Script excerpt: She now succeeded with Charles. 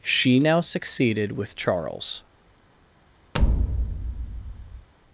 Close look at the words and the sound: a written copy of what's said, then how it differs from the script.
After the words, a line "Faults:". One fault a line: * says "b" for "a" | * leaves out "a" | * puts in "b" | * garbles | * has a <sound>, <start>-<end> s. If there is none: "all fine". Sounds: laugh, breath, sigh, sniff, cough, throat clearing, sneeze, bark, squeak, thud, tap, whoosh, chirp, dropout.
She now succeeded with Charles.
Faults:
* has a thud, 3.3-4.9 s